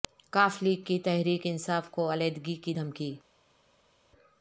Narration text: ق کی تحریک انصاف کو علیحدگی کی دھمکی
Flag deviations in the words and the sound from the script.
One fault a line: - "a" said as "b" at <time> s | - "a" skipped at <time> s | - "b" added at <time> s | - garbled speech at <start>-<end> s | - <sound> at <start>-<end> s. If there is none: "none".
- "لیگ" added at 0.6 s